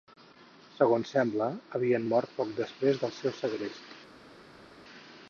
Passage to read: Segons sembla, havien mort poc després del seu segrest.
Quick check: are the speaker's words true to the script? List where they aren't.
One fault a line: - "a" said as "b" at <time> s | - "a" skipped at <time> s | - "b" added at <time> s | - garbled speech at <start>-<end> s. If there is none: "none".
none